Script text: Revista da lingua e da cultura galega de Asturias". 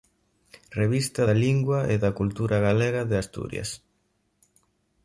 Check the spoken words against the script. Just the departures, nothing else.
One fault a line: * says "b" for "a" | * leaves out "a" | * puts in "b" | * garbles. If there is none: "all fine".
all fine